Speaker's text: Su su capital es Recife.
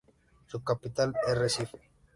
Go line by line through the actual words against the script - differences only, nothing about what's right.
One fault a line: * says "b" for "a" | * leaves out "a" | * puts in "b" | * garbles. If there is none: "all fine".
* leaves out "su"